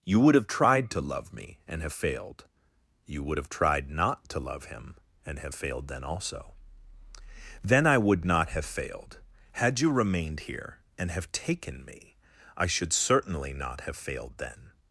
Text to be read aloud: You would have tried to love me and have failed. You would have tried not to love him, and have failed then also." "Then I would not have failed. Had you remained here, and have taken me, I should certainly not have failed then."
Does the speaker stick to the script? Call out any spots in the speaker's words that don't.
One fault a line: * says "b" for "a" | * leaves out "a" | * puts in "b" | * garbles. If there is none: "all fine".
all fine